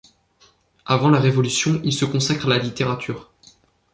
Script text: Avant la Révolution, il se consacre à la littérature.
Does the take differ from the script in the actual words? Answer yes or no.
no